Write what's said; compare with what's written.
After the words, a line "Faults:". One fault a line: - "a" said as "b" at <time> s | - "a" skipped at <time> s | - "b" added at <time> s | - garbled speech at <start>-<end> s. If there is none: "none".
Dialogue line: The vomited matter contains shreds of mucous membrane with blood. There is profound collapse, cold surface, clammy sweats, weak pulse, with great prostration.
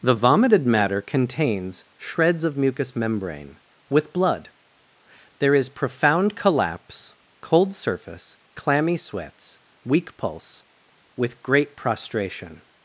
The vomited matter contains shreds of mucous membrane with blood. There is profound collapse, cold surface, clammy sweats, weak pulse, with great prostration.
Faults:
none